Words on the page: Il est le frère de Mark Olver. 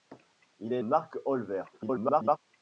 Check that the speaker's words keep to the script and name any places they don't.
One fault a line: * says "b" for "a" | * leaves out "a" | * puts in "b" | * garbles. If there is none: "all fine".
* leaves out "le frère de"
* garbles